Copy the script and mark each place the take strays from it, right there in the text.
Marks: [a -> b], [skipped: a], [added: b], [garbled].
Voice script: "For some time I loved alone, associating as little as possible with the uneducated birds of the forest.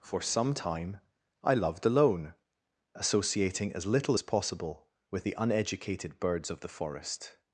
"For some time I loved alone, associating as little as possible with the uneducated birds of the forest.